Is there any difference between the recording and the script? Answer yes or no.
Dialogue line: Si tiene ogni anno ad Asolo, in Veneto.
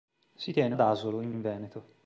yes